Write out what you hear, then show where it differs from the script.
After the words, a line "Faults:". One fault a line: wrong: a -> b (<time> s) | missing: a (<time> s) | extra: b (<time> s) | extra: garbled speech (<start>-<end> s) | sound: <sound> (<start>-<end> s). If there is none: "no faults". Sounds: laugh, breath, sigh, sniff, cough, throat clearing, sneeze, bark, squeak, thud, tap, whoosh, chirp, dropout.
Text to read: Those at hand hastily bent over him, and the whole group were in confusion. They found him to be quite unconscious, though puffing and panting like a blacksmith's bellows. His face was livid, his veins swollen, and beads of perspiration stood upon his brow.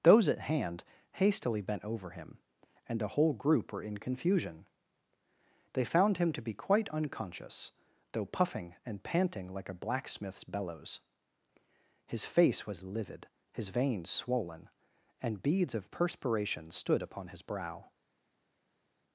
Those at hand hastily bent over him, and the whole group were in confusion. They found him to be quite unconscious, though puffing and panting like a blacksmith's bellows. His face was livid, his veins swollen, and beads of perspiration stood upon his brow.
Faults:
no faults